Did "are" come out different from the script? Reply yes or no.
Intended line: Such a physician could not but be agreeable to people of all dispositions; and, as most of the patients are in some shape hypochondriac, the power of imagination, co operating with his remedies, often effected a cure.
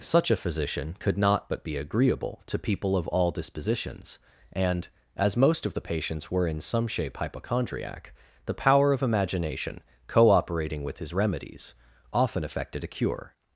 yes